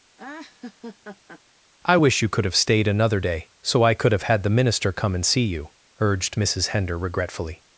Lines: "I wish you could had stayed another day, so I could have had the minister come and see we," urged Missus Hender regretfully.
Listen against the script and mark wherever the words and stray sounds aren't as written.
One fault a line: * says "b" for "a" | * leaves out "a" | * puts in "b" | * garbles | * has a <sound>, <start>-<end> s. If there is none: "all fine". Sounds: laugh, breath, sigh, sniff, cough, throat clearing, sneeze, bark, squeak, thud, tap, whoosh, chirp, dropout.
* has a laugh, 0.2-1.4 s
* says "have" for "had"
* says "you" for "we"